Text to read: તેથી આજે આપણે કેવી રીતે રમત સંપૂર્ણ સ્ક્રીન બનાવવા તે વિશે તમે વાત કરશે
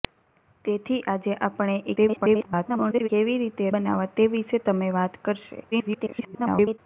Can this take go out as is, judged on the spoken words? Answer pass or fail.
fail